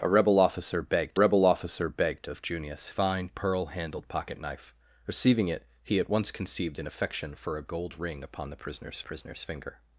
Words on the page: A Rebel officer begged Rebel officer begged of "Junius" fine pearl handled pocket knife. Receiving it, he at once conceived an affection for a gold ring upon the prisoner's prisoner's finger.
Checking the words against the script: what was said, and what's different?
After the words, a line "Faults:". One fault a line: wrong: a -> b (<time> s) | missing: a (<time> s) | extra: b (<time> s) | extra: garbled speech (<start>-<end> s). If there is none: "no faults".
A Rebel officer begged Rebel officer begged of "Junius" fine pearl handled pocket knife. Receiving it, he at once conceived an affection for a gold ring upon the prisoner's prisoner's finger.
Faults:
no faults